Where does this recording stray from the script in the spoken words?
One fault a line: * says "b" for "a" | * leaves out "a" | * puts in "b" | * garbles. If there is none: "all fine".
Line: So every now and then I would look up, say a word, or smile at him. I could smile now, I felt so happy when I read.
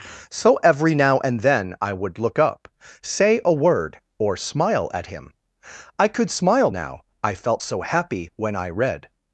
all fine